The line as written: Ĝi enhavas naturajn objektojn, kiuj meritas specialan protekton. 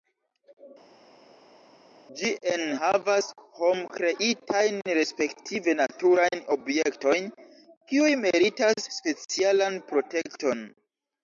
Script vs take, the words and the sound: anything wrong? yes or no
yes